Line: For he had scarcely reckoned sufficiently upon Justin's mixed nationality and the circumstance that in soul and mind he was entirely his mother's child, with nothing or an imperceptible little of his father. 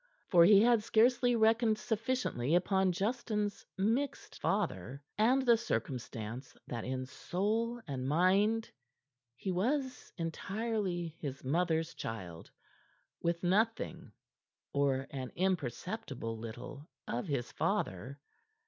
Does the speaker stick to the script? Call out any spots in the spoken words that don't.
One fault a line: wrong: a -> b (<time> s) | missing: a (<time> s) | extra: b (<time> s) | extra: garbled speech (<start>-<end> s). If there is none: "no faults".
wrong: nationality -> father (4.3 s)